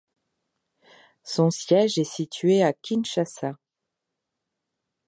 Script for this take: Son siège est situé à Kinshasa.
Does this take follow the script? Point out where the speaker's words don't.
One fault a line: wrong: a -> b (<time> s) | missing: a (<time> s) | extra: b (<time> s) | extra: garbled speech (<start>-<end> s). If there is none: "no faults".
no faults